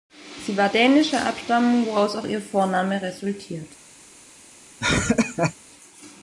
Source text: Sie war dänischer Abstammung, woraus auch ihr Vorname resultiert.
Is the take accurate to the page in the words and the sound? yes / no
no